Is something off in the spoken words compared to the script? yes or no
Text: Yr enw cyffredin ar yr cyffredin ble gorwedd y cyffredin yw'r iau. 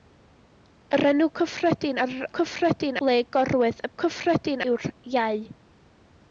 no